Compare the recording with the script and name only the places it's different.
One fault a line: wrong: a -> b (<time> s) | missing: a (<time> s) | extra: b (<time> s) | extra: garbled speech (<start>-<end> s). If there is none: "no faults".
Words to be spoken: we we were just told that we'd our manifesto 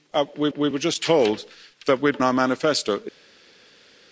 no faults